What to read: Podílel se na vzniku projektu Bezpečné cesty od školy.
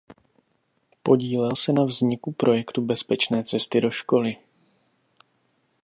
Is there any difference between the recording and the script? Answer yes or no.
yes